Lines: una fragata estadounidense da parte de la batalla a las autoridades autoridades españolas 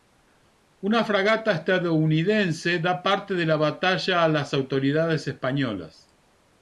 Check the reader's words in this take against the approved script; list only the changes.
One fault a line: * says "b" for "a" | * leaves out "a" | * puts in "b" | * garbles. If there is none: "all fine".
* leaves out "autoridades"